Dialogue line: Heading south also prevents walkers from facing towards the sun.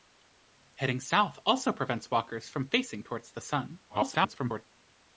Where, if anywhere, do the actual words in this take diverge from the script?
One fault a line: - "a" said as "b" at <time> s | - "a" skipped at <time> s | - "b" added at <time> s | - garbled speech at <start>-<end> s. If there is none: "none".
- garbled speech at 3.9-4.6 s